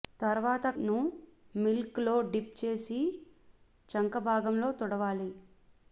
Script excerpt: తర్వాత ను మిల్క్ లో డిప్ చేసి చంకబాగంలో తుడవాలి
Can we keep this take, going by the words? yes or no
yes